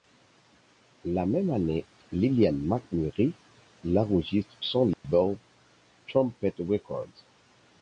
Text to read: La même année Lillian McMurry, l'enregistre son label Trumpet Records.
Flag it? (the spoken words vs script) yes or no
no